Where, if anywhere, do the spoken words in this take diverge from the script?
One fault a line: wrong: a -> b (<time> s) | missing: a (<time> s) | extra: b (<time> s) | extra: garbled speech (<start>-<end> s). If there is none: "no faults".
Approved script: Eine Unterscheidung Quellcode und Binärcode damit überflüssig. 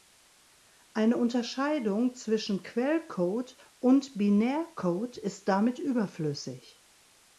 extra: zwischen (2.1 s)
extra: ist (5.2 s)